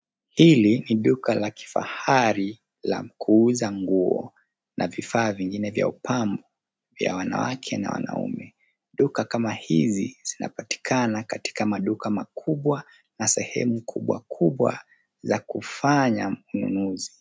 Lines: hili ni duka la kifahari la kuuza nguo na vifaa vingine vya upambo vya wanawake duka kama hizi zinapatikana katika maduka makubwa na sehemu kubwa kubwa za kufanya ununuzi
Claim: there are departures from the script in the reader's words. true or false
true